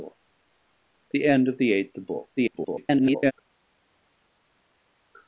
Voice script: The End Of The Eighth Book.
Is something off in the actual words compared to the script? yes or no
yes